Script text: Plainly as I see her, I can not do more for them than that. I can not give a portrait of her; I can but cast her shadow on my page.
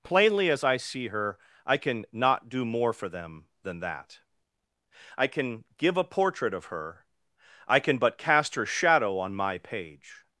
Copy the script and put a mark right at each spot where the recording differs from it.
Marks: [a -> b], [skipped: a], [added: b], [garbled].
Plainly as I see her, I can not do more for them than that. I can [skipped: not] give a portrait of her; I can but cast her shadow on my page.